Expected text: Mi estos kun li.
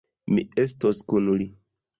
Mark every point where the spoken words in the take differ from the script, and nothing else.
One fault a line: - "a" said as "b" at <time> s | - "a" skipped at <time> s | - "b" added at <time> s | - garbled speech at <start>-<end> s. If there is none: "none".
none